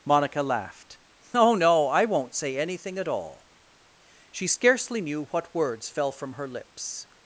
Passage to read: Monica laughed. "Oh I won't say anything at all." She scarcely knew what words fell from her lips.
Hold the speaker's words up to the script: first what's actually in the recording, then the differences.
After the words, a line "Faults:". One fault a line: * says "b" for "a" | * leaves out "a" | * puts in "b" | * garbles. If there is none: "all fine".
Monica laughed. "Oh no, I won't say anything at all." She scarcely knew what words fell from her lips.
Faults:
* puts in "no"